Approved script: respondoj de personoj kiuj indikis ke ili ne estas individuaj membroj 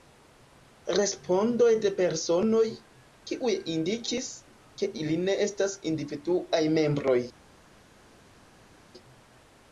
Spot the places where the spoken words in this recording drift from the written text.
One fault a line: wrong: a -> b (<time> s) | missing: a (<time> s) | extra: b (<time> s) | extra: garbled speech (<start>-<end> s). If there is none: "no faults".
no faults